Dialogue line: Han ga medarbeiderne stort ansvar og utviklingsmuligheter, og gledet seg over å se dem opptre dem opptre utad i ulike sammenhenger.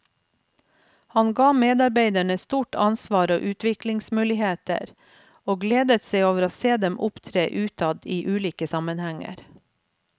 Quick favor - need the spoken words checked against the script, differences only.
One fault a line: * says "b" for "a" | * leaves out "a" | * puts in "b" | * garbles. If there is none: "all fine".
* leaves out "dem opptre"